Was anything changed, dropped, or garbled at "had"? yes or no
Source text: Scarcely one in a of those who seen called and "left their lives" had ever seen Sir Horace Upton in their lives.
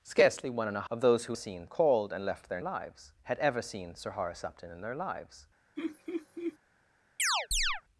no